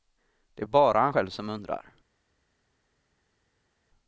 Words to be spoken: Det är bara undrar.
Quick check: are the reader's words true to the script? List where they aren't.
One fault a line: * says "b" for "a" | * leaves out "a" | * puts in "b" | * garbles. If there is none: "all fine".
* puts in "han själv som"